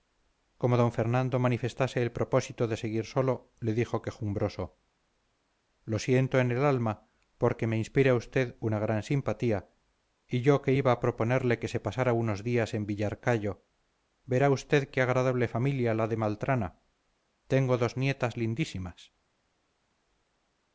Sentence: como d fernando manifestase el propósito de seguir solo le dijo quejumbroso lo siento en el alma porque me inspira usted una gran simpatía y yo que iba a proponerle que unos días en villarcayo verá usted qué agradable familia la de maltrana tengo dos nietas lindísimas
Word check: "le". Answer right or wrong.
right